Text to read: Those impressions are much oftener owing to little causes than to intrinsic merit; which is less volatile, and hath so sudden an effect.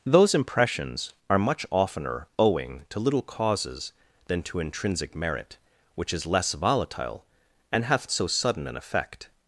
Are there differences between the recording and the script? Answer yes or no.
no